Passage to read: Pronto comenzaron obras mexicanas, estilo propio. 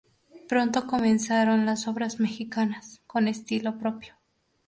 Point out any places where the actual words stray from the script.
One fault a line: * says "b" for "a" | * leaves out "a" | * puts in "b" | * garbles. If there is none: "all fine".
* puts in "las"
* puts in "con"